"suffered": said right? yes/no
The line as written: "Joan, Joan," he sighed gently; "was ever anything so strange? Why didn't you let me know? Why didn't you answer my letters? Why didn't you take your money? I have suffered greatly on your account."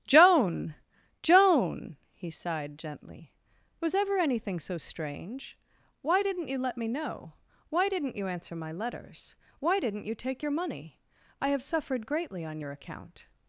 yes